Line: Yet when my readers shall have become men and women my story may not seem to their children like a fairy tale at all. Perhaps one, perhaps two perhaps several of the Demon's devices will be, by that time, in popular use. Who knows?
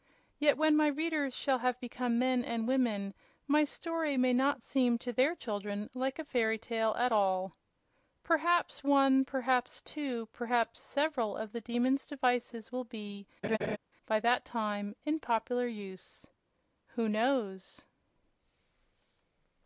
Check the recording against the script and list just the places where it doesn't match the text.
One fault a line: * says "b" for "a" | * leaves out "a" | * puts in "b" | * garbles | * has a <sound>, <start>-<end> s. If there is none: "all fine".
* has a laugh, 13.4-13.8 s